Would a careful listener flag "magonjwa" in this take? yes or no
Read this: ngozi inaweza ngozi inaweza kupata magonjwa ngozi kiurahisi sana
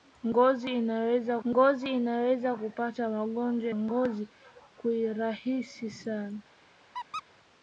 no